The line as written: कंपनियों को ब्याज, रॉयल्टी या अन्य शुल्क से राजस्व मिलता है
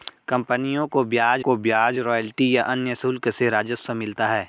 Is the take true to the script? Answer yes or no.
no